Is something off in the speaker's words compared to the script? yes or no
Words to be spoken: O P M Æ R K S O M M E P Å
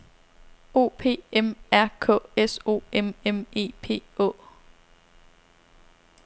yes